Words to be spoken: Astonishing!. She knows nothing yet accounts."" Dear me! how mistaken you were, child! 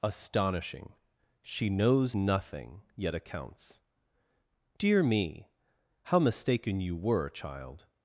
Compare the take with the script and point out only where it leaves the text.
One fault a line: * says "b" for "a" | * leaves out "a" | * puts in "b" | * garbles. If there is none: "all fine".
all fine